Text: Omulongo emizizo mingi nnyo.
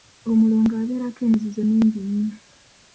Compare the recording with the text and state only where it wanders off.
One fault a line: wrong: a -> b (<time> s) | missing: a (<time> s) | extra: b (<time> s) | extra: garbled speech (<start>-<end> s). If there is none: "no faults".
extra: abeerako (0.8 s)